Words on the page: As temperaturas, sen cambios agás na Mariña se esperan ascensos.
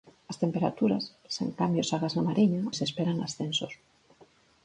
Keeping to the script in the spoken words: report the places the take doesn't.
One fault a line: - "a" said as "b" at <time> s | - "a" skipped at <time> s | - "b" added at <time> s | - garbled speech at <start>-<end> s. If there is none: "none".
none